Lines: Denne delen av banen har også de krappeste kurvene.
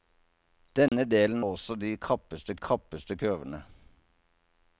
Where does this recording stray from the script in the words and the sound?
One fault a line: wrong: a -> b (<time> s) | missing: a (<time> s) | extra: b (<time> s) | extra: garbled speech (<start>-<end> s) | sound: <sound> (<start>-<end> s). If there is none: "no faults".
sound: dropout (0.9-0.9 s)
missing: av banen har (1.4 s)
extra: krappeste (2.6 s)